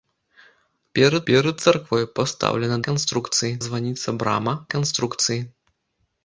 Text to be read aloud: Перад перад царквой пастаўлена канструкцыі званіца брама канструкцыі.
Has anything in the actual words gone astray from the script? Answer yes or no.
no